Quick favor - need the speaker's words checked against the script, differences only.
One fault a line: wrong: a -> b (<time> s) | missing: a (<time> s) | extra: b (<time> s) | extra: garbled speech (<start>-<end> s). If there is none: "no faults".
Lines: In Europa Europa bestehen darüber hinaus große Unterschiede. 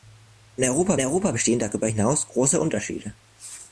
no faults